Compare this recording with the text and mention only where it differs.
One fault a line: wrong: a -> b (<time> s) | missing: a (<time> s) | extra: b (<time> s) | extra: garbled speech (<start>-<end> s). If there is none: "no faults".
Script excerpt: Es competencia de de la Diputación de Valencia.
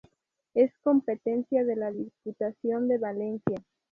missing: de (1.8 s)